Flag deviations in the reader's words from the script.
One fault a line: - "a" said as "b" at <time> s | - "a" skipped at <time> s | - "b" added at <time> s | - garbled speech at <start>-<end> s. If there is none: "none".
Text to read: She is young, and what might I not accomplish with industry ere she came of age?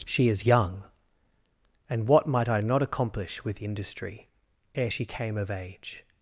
none